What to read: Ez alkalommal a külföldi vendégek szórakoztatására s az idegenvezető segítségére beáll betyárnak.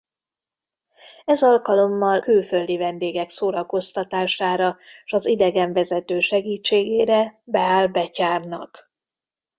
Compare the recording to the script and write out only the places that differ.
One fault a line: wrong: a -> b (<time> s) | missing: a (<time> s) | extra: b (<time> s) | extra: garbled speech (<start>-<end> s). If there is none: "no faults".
missing: a (2.2 s)